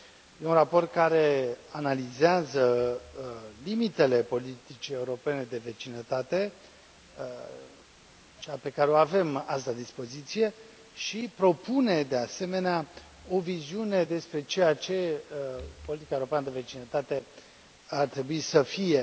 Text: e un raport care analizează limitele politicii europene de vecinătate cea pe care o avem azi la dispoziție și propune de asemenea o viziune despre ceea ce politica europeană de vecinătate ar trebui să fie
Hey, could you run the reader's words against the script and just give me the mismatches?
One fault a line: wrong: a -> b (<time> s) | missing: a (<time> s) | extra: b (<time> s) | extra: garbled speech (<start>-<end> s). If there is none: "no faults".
no faults